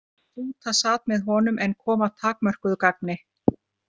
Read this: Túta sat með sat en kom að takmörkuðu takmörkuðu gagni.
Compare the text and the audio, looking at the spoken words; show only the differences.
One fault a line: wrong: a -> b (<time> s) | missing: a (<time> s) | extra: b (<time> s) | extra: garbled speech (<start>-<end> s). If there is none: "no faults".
wrong: sat -> honum (1.3 s)
missing: takmörkuðu (2.8 s)